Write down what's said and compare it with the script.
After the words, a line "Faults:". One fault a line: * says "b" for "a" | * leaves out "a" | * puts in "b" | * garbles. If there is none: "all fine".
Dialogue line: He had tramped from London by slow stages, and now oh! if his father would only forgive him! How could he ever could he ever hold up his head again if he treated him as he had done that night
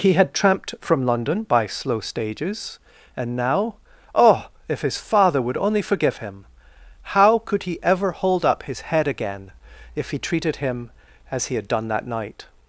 He had tramped from London by slow stages, and now oh! if his father would only forgive him! How could he ever hold up his head again if he treated him as he had done that night
Faults:
* leaves out "could he ever"